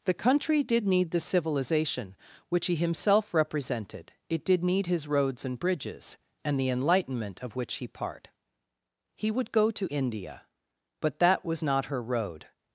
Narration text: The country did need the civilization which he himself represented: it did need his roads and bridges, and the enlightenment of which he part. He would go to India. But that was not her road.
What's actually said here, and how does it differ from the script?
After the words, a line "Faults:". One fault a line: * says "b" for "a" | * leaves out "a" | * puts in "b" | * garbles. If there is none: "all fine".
The country did need the civilization which he himself represented: it did need his roads and bridges, and the enlightenment of which he part. He would go to India. But that was not her road.
Faults:
all fine